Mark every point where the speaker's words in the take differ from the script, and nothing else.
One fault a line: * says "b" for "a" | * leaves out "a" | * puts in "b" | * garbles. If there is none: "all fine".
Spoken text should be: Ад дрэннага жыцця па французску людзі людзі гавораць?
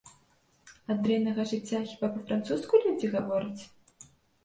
* puts in "хіба"
* leaves out "людзі"